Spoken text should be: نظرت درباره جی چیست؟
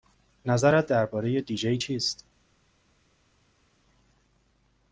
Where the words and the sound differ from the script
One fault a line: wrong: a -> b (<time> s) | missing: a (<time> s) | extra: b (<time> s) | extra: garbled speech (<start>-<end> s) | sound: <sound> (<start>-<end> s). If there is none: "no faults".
extra: دی (1.4 s)